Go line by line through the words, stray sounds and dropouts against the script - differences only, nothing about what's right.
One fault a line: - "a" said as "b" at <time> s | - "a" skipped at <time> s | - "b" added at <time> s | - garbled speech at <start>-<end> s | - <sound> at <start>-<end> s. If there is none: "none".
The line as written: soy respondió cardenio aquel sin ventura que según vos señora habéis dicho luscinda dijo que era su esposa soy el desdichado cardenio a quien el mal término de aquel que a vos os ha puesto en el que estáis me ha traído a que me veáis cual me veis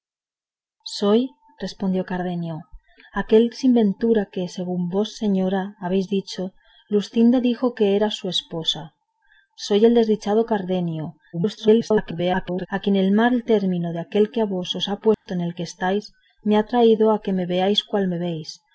- garbled speech at 11.3-12.7 s
- dropout at 15.1-15.3 s